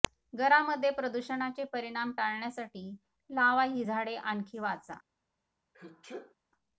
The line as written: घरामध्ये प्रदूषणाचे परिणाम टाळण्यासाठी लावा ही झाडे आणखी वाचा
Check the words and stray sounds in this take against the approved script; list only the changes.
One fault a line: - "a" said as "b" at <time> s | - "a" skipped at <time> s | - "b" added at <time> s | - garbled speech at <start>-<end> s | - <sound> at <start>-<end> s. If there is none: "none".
- sneeze at 5.7-6.3 s